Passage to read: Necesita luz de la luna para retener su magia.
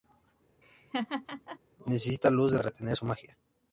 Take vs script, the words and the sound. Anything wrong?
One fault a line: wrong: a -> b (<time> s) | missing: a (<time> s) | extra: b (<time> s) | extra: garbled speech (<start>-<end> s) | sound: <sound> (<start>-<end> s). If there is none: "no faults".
sound: laugh (0.6-1.6 s)
missing: la luna para (2.6 s)